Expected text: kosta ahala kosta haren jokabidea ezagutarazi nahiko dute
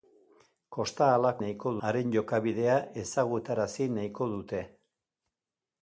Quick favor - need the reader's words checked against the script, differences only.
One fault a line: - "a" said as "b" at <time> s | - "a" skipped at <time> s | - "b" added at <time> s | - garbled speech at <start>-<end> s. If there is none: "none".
- "kosta" said as "nahiko" at 1.4 s